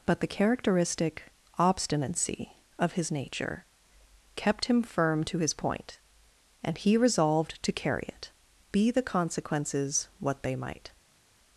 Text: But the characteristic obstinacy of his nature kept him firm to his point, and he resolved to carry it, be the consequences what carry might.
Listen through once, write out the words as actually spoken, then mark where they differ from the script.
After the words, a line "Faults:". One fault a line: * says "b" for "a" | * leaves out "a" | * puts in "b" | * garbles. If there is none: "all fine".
But the characteristic obstinacy of his nature kept him firm to his point, and he resolved to carry it, be the consequences what they might.
Faults:
* says "they" for "carry"